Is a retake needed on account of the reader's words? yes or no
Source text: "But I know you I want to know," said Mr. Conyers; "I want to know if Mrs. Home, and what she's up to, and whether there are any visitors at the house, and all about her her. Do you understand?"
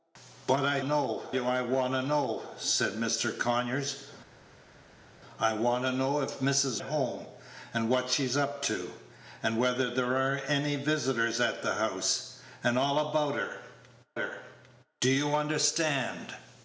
no